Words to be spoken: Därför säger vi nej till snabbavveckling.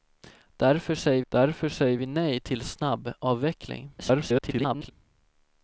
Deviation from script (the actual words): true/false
true